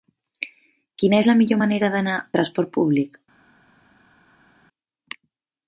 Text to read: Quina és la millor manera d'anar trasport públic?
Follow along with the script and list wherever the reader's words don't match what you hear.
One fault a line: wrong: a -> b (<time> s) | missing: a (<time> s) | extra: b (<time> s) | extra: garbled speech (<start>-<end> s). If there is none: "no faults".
no faults